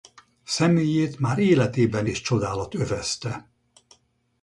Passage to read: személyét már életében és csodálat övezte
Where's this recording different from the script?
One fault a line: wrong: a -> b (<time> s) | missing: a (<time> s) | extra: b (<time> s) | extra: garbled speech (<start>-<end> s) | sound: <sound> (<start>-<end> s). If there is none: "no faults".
no faults